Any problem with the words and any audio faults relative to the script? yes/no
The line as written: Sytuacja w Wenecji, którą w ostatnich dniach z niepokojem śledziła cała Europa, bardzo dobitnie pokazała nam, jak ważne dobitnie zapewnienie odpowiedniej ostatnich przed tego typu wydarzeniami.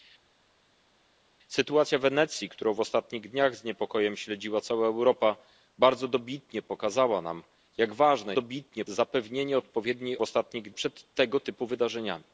no